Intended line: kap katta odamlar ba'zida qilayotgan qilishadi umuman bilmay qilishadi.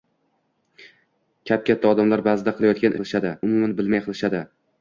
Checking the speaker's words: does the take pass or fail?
pass